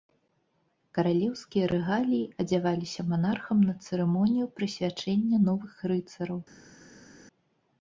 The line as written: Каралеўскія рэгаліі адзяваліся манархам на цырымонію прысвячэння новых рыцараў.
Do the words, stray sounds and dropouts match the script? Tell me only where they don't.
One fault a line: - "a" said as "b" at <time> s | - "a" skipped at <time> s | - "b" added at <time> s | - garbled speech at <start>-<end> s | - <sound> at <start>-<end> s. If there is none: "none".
none